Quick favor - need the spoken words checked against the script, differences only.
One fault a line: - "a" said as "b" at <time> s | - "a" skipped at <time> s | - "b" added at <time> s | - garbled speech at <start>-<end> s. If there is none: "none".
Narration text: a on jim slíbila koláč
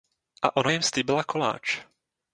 - "on" said as "ona" at 0.6 s